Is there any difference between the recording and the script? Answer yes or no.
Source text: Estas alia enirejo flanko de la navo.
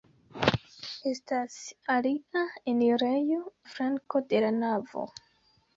no